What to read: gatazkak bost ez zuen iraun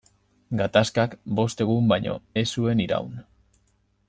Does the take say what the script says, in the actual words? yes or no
no